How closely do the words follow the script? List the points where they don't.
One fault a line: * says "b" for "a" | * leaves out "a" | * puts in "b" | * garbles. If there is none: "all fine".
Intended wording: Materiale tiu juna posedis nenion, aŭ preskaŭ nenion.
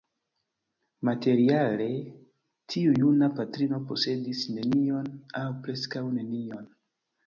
* puts in "patrino"